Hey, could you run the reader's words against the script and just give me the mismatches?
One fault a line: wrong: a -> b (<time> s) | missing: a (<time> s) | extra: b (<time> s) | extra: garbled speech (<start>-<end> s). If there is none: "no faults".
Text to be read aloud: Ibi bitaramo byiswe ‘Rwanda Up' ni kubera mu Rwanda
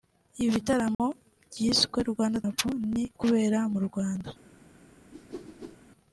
no faults